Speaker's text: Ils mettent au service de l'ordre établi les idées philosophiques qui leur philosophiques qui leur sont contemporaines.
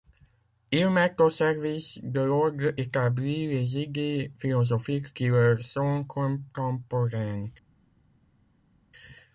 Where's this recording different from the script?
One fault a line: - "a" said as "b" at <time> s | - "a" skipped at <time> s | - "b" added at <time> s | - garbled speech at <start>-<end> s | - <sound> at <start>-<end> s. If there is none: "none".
- "philosophiques qui leur" skipped at 5.6 s